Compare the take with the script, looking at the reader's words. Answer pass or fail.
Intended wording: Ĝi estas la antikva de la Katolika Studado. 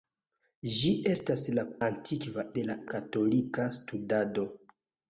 pass